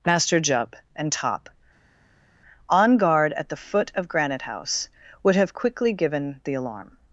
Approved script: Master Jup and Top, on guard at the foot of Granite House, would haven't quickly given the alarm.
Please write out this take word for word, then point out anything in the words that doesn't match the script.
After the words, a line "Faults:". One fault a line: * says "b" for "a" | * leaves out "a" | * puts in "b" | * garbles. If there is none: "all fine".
Master Jup and Top, on guard at the foot of Granite House, would have quickly given the alarm.
Faults:
* says "have" for "haven't"